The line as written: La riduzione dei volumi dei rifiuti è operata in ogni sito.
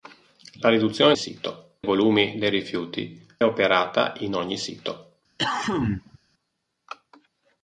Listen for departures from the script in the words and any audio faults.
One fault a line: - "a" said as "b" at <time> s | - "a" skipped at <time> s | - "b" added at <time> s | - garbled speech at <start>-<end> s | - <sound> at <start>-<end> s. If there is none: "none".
- "dei" said as "sito" at 1.1 s
- "è" skipped at 3.3 s
- cough at 5.4-6.2 s